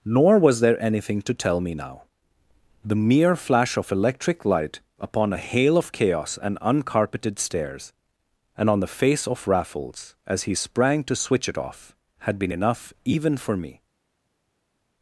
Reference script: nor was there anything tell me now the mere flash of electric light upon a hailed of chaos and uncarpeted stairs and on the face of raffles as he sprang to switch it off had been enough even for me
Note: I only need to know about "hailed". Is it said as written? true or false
false